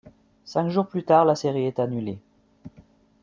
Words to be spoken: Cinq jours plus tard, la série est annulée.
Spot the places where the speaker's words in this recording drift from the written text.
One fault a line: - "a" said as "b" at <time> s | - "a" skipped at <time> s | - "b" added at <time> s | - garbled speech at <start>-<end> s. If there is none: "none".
none